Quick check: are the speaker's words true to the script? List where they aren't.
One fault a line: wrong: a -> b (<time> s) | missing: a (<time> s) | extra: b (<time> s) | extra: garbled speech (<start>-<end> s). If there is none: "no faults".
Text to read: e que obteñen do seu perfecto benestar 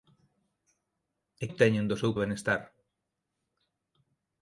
missing: que (1.4 s)
missing: perfecto (2.1 s)